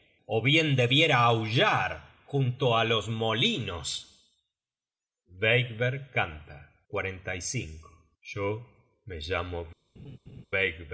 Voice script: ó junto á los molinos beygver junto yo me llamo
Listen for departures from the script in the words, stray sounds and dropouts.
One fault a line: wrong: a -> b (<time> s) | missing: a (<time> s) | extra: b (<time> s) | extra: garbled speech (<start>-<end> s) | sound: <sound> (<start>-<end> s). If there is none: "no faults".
extra: bien debiera aullar (0.4 s)
wrong: junto -> canta (6.1 s)
sound: laugh (10.0-10.5 s)